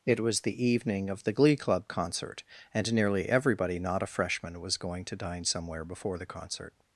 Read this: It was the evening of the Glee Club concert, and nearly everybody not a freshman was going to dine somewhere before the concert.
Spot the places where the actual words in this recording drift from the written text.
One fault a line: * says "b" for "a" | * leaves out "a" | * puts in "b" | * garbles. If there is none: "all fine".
all fine